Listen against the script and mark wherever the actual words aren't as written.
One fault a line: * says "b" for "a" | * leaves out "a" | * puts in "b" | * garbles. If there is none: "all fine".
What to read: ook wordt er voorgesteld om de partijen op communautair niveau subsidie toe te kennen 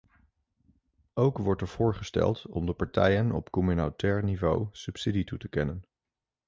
all fine